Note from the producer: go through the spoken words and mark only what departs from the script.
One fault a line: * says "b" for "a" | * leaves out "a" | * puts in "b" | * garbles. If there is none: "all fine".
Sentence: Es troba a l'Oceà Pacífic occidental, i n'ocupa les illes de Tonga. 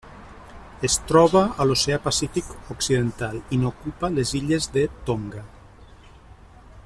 all fine